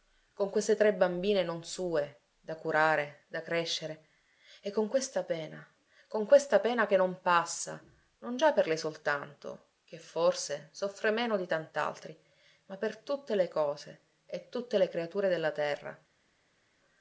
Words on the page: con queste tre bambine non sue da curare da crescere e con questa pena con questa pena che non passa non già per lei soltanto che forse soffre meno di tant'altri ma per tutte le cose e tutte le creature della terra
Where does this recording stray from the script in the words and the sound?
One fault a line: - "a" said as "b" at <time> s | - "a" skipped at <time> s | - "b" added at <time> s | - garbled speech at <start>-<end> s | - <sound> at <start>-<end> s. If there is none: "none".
none